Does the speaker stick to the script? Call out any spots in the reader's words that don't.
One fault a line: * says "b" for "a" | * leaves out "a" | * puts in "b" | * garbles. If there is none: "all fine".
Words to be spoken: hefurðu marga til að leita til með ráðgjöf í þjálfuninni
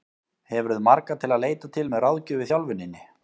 all fine